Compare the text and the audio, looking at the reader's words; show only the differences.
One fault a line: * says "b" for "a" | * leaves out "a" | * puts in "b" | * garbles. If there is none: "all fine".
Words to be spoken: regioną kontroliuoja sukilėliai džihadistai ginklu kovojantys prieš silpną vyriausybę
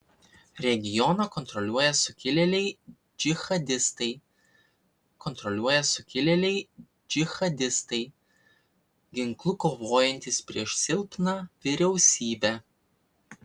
* puts in "kontroliuoja sukilėliai džihadistai"